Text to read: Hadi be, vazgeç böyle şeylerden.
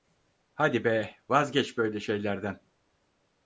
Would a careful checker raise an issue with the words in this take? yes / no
no